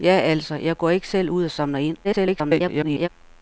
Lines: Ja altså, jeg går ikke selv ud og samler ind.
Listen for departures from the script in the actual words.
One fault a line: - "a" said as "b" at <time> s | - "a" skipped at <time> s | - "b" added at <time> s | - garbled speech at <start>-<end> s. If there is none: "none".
- garbled speech at 2.0-3.1 s